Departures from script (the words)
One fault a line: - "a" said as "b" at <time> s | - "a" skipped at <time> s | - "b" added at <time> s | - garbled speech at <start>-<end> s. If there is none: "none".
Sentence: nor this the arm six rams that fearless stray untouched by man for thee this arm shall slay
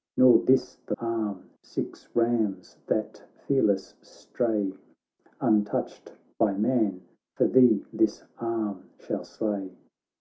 none